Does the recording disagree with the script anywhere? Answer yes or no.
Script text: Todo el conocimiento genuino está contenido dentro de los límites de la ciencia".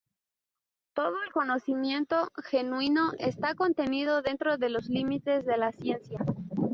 no